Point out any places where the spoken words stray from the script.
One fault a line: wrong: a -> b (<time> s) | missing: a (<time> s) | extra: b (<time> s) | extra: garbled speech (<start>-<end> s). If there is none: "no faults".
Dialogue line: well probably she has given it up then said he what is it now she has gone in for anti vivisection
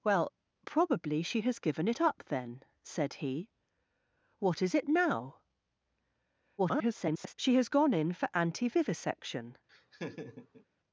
extra: garbled speech (6.6-7.3 s)